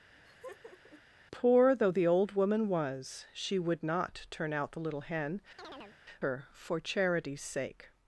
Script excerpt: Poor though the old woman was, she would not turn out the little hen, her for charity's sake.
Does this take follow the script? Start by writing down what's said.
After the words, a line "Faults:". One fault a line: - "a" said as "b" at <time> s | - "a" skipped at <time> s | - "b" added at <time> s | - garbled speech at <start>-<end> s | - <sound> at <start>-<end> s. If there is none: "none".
Poor though the old woman was, she would not turn out the little hen, her for charity's sake.
Faults:
- laugh at 0.2-1.0 s
- chirp at 5.6-6.0 s